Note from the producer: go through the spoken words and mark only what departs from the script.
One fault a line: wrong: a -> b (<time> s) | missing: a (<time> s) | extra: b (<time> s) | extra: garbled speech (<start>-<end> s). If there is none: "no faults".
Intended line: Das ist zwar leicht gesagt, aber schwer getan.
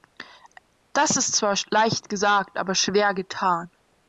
no faults